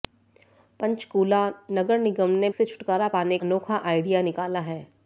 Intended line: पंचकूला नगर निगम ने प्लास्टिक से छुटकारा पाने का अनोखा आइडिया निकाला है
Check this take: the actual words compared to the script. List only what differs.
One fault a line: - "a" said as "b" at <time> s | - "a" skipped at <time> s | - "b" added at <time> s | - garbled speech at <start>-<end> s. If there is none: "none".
- "प्लास्टिक" skipped at 2.5 s
- "का" skipped at 3.4 s